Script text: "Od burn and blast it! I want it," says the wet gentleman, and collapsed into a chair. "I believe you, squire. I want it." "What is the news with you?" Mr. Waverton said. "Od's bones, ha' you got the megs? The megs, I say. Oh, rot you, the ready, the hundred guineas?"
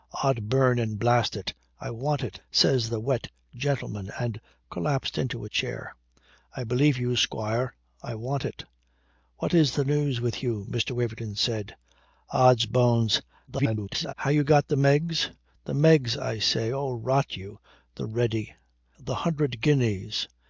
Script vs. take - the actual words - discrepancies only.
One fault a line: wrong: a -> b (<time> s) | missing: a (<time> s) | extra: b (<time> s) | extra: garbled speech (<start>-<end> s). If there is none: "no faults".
extra: garbled speech (13.5-14.1 s)